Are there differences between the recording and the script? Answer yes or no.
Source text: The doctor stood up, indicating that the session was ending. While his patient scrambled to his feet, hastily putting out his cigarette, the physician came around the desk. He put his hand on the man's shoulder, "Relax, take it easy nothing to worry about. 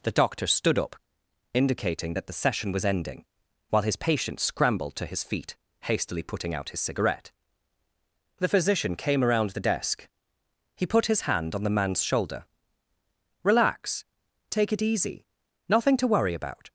no